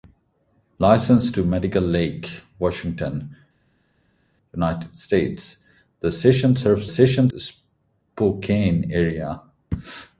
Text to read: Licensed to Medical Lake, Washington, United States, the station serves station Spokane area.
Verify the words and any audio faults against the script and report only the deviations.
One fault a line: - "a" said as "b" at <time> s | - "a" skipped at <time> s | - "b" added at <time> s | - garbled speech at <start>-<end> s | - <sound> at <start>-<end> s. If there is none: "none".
none